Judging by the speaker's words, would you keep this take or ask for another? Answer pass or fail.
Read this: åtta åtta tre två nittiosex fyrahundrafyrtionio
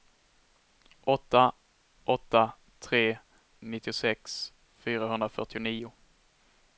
fail